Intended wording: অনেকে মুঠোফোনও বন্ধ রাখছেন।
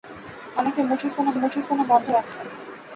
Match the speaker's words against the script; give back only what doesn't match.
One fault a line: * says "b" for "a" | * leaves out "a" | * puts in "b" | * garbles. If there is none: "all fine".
* puts in "মুঠোফোনও"